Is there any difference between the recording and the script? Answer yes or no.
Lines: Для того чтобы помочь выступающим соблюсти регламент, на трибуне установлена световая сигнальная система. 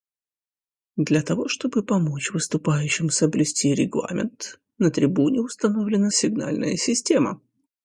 yes